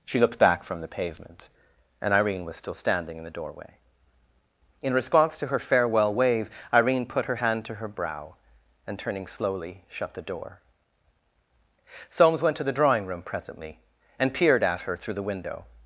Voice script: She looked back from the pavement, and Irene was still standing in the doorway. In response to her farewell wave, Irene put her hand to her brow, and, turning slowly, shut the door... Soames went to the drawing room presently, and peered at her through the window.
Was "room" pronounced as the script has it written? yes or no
yes